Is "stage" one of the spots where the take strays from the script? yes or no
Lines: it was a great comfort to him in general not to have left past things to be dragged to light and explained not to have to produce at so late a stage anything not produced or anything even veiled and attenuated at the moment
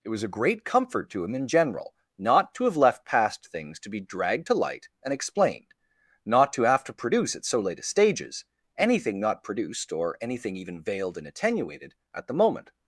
yes